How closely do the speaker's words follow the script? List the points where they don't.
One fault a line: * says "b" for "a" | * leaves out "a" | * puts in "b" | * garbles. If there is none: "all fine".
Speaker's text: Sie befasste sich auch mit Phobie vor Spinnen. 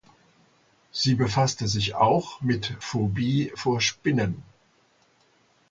all fine